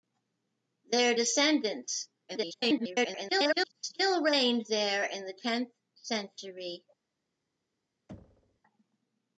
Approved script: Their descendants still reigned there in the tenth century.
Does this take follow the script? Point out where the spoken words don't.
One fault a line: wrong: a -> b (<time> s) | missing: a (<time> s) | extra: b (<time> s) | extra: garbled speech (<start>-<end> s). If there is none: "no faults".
extra: garbled speech (2.3-3.7 s)